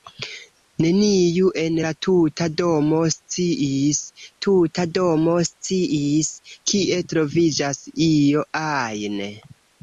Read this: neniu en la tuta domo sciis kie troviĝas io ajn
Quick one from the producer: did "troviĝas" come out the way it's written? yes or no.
yes